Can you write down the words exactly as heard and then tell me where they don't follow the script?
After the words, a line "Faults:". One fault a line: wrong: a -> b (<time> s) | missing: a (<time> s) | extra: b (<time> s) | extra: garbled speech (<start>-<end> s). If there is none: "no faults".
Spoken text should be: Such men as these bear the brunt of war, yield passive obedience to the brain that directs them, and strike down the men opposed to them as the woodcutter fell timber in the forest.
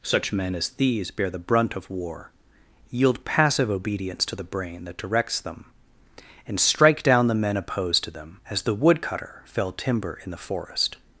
Such men as these bear the brunt of war, yield passive obedience to the brain that directs them, and strike down the men opposed to them as the woodcutter fell timber in the forest.
Faults:
no faults